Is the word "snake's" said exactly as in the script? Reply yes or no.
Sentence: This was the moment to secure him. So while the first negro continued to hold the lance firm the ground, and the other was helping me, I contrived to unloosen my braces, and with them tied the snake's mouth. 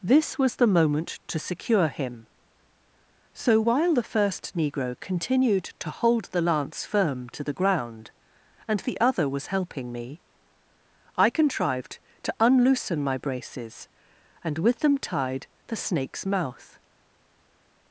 yes